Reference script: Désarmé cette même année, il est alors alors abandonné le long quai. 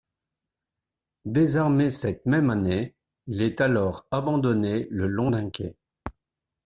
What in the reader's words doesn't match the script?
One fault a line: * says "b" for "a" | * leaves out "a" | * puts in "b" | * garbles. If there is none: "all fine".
* leaves out "alors"
* puts in "d'un"